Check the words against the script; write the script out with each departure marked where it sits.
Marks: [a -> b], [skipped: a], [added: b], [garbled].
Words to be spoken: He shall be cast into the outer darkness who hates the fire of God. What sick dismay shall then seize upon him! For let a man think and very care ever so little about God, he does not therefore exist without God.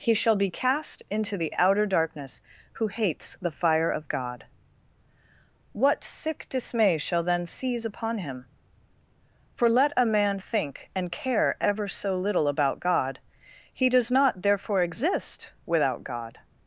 He shall be cast into the outer darkness who hates the fire of God. What sick dismay shall then seize upon him! For let a man think and [skipped: very] care ever so little about God, he does not therefore exist without God.